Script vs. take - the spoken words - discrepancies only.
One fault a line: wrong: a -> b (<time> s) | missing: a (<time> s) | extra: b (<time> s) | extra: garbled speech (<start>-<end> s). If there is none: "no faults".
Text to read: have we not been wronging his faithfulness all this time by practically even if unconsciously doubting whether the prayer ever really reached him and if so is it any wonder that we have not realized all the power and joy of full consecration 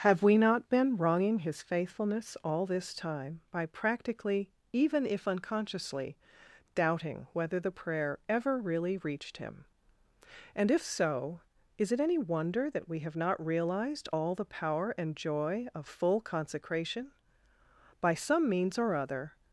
extra: by some means or other (18.0 s)